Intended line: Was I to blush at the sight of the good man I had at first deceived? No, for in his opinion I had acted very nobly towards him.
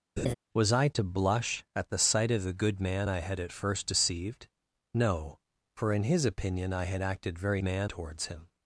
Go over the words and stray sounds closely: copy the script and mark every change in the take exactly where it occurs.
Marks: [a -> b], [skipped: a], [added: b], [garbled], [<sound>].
[laugh] Was I to blush at the sight of the good man I had at first deceived? No, for in his opinion I had acted very [nobly -> man] towards him.